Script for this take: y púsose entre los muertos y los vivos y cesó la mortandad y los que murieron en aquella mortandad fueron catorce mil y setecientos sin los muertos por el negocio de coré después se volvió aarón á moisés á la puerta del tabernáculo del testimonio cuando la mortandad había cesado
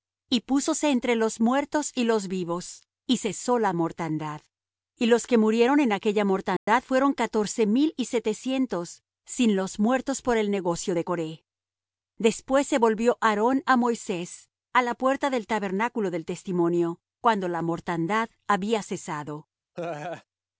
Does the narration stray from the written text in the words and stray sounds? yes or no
yes